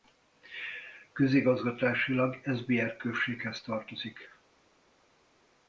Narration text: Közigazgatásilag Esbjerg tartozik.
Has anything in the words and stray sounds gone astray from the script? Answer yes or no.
yes